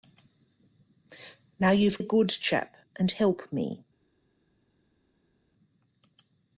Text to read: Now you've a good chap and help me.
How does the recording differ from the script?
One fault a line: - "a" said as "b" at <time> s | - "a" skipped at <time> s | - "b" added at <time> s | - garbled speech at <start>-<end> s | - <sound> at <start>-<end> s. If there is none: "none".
none